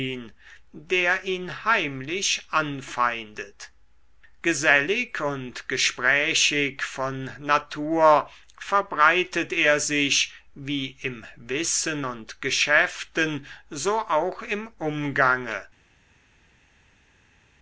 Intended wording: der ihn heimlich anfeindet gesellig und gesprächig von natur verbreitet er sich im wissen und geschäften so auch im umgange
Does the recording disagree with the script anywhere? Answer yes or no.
yes